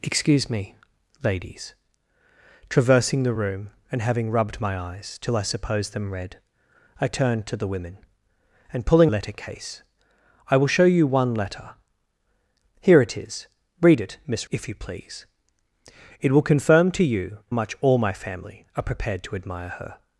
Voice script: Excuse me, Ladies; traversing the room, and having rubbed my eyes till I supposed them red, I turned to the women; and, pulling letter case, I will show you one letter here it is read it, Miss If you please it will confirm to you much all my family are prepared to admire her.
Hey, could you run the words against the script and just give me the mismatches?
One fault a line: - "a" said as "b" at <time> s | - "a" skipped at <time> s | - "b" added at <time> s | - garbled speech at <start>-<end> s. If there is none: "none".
none